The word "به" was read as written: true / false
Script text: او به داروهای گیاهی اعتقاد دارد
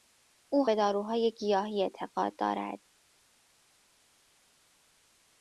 true